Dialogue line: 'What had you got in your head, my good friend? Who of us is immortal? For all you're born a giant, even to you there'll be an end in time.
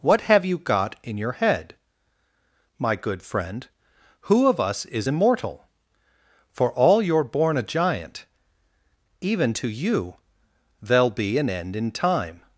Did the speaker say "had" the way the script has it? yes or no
no